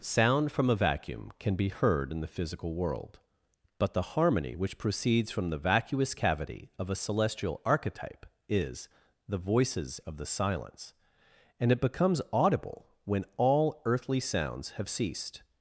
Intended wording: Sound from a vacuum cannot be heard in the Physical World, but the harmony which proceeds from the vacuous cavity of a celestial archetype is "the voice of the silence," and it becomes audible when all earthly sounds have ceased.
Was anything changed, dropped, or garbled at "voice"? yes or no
yes